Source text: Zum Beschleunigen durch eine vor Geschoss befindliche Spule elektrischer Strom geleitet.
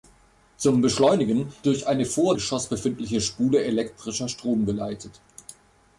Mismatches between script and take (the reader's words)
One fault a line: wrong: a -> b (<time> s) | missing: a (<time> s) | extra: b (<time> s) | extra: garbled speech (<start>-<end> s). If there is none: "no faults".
no faults